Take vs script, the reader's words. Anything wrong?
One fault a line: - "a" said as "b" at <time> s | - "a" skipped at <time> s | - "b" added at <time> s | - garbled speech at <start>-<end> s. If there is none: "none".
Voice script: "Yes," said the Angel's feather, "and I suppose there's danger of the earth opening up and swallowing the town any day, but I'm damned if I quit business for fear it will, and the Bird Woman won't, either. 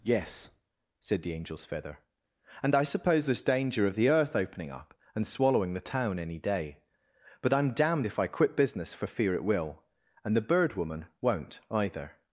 none